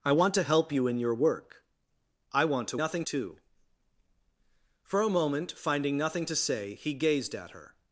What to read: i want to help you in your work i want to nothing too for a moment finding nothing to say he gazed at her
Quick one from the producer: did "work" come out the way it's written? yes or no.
yes